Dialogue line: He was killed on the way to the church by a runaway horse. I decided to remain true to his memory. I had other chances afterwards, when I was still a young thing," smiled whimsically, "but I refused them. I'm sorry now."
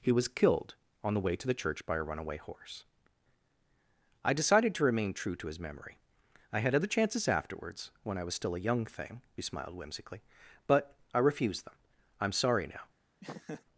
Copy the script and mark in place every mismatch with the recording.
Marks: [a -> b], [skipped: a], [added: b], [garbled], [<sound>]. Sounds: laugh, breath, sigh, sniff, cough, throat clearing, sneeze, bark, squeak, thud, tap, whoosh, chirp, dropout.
He was killed on the way to the church by a runaway horse. I decided to remain true to his memory. I had other chances afterwards, when I was still a young thing," smiled whimsically, "but I refused them. I'm sorry now." [laugh]